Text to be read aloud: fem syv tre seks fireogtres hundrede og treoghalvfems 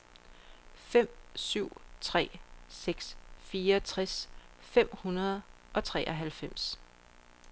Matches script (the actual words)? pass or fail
fail